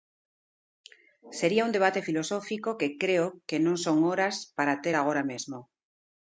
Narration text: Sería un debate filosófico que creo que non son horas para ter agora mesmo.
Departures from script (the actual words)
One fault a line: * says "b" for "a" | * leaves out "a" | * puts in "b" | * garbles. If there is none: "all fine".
all fine